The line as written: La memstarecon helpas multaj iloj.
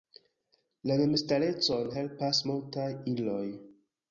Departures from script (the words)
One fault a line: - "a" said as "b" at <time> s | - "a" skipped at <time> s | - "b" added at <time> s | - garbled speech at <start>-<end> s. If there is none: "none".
none